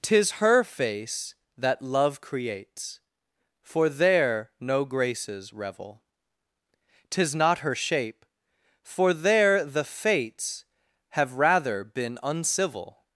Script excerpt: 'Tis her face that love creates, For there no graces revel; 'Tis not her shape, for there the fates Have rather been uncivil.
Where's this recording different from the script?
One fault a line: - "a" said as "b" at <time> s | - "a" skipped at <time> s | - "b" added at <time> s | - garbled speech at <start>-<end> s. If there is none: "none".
none